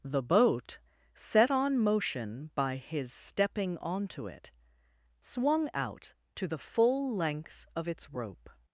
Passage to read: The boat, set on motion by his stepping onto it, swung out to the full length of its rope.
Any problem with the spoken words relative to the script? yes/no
no